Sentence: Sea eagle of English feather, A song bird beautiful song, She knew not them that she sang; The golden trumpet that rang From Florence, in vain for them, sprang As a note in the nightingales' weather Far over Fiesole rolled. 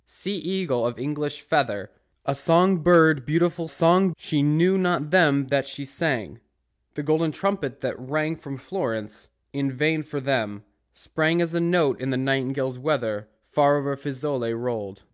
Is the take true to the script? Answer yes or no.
yes